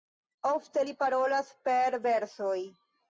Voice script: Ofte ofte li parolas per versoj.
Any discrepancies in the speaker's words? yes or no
yes